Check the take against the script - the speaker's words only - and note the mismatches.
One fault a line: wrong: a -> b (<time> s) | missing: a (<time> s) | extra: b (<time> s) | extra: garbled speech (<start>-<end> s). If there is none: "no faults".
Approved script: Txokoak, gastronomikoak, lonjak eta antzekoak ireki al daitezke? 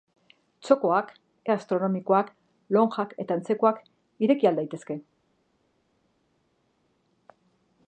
no faults